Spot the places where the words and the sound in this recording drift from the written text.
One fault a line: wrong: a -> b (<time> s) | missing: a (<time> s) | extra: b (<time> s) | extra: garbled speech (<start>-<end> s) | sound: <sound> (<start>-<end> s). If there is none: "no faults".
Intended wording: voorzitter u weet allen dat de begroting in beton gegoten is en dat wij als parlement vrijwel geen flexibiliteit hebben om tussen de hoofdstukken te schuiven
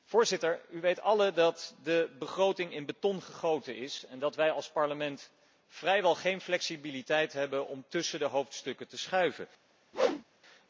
sound: whoosh (9.9-10.2 s)